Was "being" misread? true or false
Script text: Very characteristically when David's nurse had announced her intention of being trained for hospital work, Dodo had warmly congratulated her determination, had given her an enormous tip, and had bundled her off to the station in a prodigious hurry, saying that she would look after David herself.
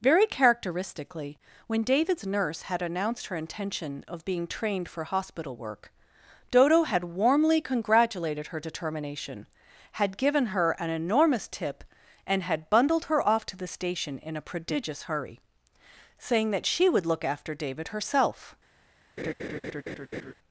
false